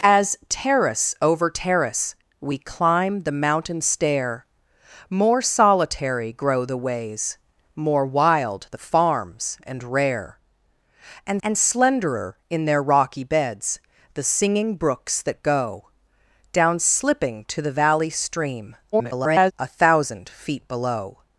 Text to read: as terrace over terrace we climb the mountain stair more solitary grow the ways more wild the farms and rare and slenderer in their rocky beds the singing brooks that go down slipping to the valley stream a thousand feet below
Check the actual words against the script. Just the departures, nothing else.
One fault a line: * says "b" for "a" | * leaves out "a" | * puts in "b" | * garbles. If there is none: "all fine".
* puts in "and"
* garbles